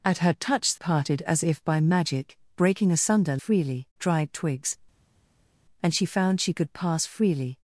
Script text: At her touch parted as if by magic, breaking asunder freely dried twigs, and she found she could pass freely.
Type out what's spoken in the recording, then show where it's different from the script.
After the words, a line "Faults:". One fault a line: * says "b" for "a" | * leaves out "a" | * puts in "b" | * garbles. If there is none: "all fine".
At her touch parted as if by magic, breaking asunder freely dried twigs, and she found she could pass freely.
Faults:
all fine